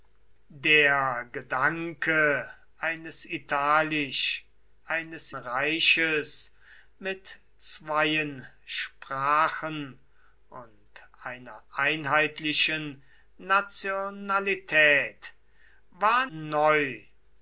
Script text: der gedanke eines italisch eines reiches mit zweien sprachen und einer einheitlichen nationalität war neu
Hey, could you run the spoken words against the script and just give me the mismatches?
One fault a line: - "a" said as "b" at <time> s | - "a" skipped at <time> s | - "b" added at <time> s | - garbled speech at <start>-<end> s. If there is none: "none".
none